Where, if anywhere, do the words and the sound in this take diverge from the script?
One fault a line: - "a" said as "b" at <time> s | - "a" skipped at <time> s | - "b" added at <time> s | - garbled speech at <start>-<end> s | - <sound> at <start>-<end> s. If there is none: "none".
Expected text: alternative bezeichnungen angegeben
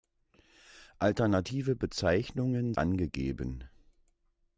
none